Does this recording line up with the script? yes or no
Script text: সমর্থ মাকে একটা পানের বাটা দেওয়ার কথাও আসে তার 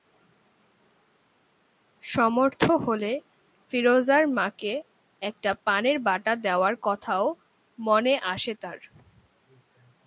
no